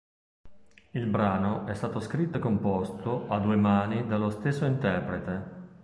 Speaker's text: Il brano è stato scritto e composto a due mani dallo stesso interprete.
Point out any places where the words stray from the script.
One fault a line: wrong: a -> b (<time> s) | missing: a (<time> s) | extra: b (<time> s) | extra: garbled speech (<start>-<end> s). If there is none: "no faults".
no faults